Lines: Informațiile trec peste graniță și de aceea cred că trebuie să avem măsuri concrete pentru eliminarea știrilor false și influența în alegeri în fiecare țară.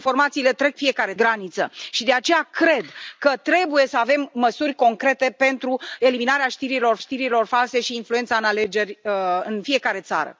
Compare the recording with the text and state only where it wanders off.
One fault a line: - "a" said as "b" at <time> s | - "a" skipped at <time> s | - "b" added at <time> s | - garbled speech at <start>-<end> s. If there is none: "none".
- "peste" said as "fiecare" at 0.7 s
- "știrilor" added at 7.0 s